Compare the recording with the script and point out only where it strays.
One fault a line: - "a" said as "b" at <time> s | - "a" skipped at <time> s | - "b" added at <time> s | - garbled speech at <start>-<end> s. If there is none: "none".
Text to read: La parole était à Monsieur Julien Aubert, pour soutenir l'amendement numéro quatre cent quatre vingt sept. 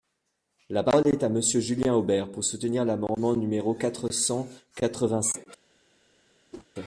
- "était" said as "est" at 1.1 s